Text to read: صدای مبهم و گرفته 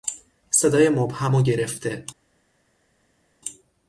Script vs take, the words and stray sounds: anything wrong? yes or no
no